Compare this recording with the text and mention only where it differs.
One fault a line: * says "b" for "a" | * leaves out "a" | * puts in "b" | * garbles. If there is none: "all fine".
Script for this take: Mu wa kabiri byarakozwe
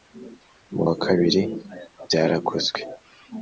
all fine